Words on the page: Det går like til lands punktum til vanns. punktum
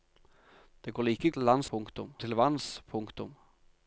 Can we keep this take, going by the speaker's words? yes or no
yes